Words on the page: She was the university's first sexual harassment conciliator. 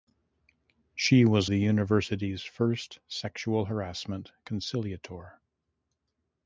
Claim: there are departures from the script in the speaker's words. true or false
false